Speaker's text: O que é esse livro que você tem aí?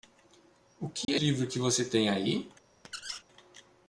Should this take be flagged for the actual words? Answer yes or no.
yes